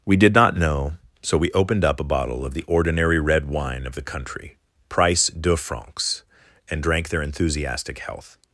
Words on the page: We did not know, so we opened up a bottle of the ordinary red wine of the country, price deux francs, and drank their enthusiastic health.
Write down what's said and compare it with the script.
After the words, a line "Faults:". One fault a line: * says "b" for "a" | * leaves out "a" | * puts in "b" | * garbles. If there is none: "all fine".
We did not know, so we opened up a bottle of the ordinary red wine of the country, price deux francs, and drank their enthusiastic health.
Faults:
all fine